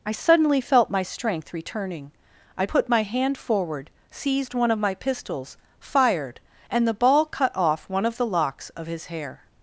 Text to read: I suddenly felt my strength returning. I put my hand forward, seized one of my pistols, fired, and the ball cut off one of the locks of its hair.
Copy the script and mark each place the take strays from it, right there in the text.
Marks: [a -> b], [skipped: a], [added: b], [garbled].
I suddenly felt my strength returning. I put my hand forward, seized one of my pistols, fired, and the ball cut off one of the locks of [its -> his] hair.